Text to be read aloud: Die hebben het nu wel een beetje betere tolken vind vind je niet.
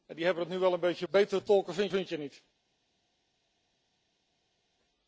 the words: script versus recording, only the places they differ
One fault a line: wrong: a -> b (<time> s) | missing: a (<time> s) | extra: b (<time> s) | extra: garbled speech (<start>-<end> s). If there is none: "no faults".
no faults